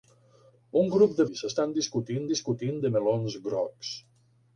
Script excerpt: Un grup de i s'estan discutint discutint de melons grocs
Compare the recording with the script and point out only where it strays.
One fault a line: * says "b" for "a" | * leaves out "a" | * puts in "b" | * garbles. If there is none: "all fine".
all fine